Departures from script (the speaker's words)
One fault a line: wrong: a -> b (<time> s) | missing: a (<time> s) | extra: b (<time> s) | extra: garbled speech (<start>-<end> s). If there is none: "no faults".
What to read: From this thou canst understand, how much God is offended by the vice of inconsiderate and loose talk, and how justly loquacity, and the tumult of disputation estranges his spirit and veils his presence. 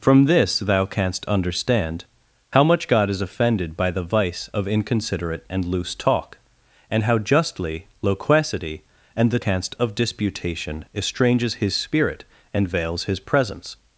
wrong: tumult -> canst (9.4 s)